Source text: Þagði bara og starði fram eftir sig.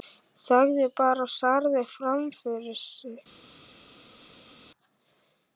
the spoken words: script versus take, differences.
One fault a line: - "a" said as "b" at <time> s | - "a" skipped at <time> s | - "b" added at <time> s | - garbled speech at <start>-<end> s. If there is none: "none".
- "eftir" said as "fyrir" at 2.4 s